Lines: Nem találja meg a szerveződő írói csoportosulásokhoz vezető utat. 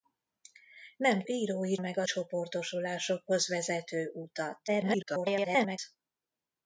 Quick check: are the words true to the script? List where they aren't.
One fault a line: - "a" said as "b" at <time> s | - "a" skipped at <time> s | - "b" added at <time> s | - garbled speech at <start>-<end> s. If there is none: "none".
- "találja" said as "írói" at 1.3 s
- "szerveződő írói" skipped at 2.0 s
- garbled speech at 4.7-5.8 s